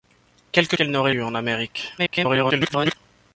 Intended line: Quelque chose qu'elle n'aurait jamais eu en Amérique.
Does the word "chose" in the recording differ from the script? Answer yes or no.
yes